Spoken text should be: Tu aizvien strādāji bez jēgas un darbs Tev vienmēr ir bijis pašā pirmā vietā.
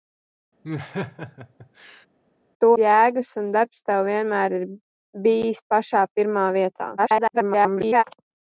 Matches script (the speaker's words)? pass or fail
fail